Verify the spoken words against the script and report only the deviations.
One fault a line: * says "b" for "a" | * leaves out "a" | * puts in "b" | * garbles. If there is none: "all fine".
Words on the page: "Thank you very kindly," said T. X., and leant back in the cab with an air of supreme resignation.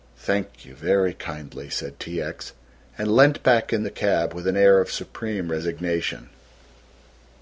all fine